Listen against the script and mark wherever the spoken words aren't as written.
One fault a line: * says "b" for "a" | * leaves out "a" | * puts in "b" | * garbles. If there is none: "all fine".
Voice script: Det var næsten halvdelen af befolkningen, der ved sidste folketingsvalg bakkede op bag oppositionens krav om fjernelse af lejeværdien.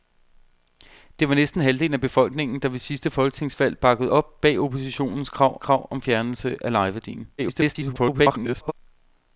* puts in "krav"
* garbles